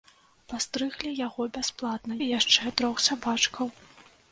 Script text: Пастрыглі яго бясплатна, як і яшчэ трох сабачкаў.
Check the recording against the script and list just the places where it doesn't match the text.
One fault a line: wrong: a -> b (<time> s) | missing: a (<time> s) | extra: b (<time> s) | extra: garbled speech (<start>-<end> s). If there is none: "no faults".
missing: як (2.2 s)